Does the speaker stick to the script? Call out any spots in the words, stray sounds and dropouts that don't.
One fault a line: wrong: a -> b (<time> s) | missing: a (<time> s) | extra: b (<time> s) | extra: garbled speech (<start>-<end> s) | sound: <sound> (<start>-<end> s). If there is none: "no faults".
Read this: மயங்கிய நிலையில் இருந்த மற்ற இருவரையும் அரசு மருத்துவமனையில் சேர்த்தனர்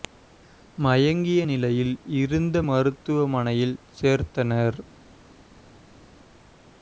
missing: மற்ற இருவரையும் அரசு (2.6 s)